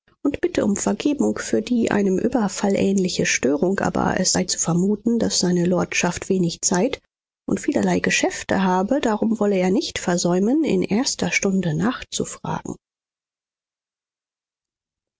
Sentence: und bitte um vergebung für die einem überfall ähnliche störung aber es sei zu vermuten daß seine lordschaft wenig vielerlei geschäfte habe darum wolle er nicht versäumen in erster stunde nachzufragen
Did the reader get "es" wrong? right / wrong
right